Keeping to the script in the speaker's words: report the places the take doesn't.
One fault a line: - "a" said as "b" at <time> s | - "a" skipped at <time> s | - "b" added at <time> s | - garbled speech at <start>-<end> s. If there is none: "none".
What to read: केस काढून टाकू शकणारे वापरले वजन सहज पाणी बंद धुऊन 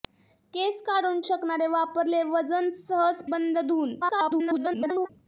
- "टाकू" skipped at 1.2 s
- "पाणी" skipped at 3.2 s
- garbled speech at 4.0-5.1 s